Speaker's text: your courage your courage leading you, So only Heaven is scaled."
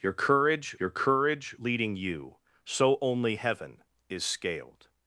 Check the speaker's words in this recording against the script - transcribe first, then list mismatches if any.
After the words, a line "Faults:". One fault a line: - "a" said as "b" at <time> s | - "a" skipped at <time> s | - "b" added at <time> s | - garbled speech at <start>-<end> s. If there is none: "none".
your courage your courage leading you, So only Heaven is scaled."
Faults:
none